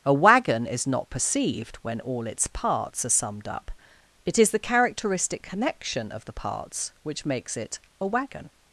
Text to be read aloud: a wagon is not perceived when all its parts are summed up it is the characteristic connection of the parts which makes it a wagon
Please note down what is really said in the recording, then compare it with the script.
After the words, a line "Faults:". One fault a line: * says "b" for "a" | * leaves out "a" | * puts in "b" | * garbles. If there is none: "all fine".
a wagon is not perceived when all its parts are summed up it is the characteristic connection of the parts which makes it a wagon
Faults:
all fine